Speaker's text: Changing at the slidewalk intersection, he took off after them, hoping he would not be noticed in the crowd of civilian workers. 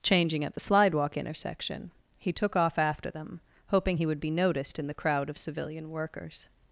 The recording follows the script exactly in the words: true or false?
false